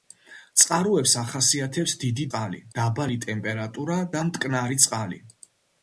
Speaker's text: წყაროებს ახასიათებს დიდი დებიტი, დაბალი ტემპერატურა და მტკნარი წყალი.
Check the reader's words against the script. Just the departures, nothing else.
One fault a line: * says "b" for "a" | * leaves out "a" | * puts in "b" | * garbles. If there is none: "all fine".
* says "წყალი" for "დებიტი"